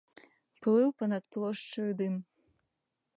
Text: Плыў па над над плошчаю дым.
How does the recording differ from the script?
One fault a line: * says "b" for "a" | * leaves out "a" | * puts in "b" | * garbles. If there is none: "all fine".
* leaves out "над"